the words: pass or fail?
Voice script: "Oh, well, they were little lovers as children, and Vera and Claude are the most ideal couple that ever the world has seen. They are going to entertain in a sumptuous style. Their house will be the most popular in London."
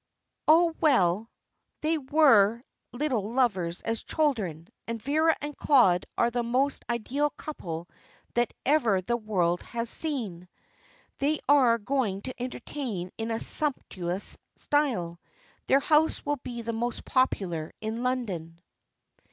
pass